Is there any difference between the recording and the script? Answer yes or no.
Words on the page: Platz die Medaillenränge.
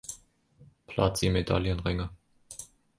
no